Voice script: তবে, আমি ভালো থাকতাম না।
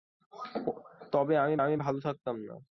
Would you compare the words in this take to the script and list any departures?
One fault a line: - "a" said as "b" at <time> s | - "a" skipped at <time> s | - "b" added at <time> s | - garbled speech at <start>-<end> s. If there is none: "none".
- "আমি" added at 1.6 s